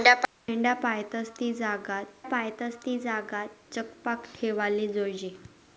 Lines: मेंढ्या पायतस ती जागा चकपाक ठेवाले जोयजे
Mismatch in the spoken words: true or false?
true